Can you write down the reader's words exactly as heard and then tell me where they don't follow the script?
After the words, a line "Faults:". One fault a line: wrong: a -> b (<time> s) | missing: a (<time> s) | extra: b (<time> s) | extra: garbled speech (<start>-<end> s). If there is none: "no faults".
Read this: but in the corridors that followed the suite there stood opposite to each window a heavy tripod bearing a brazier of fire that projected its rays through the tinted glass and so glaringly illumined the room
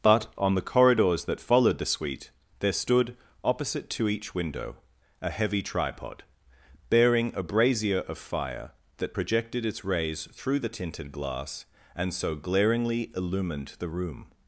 but on the corridors that followed the suite there stood opposite to each window a heavy tripod bearing a brazier of fire that projected its rays through the tinted glass and so glaringly illumined the room
Faults:
wrong: in -> on (0.4 s)